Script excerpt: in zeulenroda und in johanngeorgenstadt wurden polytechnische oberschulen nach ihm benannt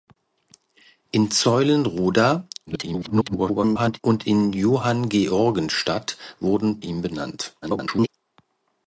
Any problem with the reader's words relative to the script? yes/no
yes